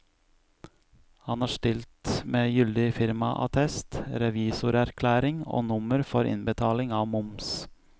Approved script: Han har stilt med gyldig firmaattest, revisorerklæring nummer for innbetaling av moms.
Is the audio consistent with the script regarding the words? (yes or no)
no